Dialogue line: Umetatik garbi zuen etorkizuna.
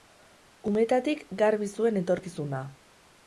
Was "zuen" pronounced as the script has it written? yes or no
yes